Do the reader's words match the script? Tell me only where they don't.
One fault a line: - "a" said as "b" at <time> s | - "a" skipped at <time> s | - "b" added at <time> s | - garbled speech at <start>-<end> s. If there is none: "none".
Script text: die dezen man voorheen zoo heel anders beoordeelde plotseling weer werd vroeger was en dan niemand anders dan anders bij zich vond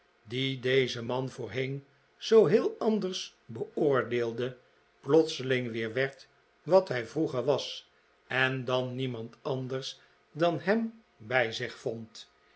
- "wat hij" added at 6.6 s
- "anders" said as "hem" at 10.6 s